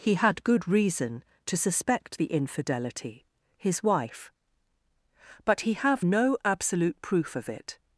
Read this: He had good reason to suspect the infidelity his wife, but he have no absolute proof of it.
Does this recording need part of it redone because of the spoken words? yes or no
no